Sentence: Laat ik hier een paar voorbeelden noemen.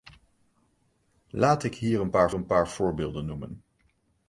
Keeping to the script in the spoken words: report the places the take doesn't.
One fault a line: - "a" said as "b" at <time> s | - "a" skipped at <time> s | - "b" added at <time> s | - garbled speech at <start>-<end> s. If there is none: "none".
- "een paar" added at 2.3 s